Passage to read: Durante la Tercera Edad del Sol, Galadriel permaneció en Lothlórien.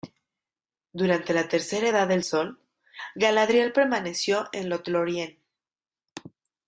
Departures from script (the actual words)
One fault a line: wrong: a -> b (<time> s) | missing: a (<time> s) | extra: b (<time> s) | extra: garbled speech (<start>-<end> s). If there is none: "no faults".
no faults